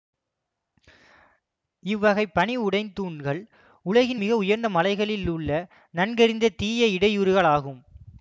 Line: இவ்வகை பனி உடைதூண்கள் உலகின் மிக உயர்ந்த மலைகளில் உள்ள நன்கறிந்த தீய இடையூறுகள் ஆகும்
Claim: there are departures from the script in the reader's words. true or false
false